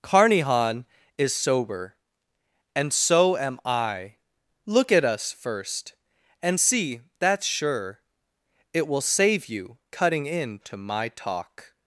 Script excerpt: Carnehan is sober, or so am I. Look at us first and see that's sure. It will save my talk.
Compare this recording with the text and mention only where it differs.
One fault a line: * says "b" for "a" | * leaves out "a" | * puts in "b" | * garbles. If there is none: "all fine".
* says "and" for "or"
* puts in "you cutting into"